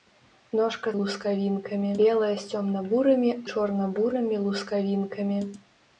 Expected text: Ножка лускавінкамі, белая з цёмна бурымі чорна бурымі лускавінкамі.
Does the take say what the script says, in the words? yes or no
yes